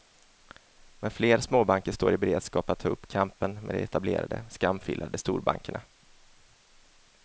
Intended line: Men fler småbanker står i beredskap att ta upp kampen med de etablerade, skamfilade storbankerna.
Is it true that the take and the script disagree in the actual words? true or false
false